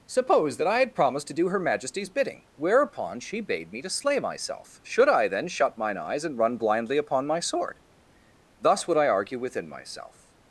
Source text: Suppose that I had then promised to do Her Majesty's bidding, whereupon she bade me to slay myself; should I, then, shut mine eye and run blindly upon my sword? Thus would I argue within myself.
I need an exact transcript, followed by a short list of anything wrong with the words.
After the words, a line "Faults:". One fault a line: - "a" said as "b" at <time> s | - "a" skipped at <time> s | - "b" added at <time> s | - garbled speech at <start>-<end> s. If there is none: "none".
Suppose that I had promised to do Her Majesty's bidding, whereupon she bade me to slay myself; should I, then, shut mine eyes and run blindly upon my sword? Thus would I argue within myself.
Faults:
- "then" skipped at 0.9 s
- "eye" said as "eyes" at 6.0 s